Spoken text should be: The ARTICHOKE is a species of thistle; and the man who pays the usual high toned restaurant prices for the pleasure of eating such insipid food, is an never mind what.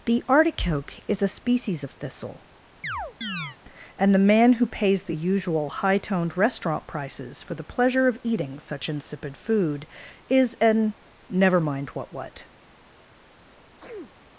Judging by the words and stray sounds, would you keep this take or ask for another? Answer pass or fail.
fail